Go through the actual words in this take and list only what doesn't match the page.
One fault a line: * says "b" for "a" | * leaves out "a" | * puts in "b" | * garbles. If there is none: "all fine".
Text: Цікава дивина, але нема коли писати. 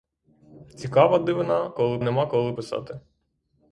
* says "коли" for "але"